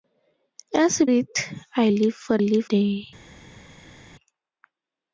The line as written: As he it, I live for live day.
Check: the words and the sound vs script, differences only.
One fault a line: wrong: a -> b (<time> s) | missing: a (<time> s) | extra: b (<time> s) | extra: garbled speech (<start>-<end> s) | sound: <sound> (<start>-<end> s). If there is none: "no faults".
no faults